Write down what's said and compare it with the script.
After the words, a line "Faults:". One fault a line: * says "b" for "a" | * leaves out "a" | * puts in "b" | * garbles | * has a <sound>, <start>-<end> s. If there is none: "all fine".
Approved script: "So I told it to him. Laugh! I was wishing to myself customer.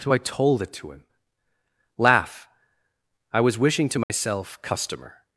"So I told it to him. Laugh! I was wishing to myself customer.
Faults:
* has a dropout, 4.0-4.1 s